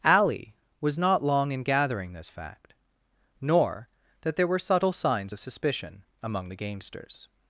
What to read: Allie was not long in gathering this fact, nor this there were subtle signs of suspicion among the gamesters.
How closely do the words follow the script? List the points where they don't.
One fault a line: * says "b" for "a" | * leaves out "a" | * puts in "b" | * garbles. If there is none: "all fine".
* says "that" for "this"